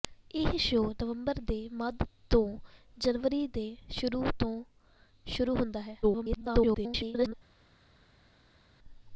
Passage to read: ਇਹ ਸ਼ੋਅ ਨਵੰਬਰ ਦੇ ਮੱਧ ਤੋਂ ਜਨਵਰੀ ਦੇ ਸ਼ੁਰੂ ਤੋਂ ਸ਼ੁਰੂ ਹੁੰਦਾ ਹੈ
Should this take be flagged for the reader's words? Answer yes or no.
yes